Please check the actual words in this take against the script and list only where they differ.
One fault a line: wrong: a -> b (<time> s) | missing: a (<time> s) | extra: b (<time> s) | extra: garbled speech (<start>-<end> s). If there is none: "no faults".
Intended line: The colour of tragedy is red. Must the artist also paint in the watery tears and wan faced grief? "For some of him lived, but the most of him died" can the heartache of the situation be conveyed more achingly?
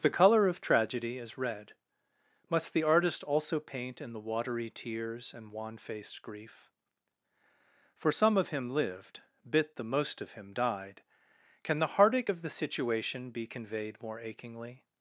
wrong: but -> bit (9.5 s)